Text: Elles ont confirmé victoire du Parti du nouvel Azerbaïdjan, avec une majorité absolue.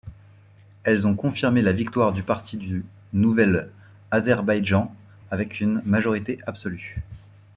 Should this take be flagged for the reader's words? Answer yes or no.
yes